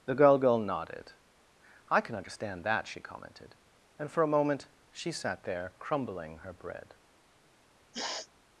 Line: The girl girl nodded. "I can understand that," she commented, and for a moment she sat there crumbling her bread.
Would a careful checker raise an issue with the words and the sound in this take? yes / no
yes